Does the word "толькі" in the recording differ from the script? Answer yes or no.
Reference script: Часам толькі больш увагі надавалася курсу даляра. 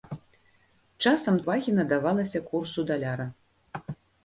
yes